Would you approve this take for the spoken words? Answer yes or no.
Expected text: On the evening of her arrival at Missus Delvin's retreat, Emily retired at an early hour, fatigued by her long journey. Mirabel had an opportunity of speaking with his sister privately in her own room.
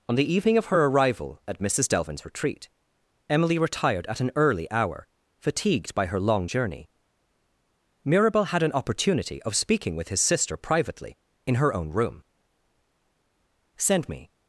no